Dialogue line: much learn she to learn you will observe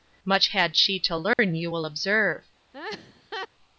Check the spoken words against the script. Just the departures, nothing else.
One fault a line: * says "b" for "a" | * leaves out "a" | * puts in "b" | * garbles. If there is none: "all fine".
* says "had" for "learn"